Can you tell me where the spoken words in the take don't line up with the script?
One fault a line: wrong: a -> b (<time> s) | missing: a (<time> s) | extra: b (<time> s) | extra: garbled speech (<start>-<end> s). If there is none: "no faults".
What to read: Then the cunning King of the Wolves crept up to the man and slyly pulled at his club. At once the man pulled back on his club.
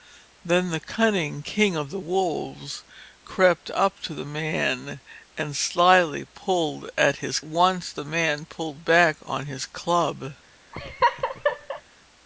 missing: club At (7.4 s)